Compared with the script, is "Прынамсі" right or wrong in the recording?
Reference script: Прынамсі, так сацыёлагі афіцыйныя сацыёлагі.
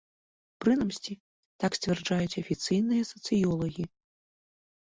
right